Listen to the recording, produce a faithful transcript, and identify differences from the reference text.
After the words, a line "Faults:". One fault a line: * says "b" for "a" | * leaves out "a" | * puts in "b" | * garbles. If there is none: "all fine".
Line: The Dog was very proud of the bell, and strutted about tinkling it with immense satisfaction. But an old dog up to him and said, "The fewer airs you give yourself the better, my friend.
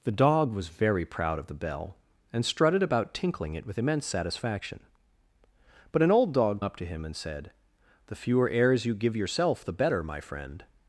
The Dog was very proud of the bell, and strutted about tinkling it with immense satisfaction. But an old dog up to him and said, "The fewer airs you give yourself the better, my friend.
Faults:
all fine